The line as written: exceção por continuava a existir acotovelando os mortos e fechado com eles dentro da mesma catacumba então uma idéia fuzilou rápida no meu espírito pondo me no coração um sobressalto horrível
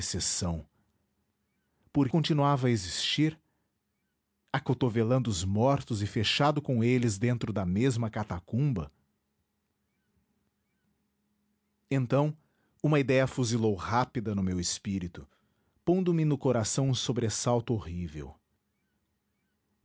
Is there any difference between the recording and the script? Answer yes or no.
no